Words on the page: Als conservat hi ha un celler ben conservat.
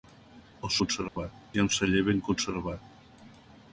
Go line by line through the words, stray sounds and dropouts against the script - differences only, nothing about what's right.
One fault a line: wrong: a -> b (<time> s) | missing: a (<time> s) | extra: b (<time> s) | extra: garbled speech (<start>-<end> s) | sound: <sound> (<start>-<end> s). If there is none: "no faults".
sound: dropout (1.1-1.2 s)